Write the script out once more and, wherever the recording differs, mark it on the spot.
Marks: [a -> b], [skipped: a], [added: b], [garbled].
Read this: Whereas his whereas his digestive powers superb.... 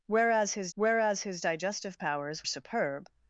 Whereas his whereas his digestive powers superb....